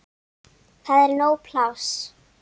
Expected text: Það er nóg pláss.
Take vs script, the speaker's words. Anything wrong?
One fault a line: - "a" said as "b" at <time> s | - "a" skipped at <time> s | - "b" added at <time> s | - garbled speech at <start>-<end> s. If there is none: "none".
none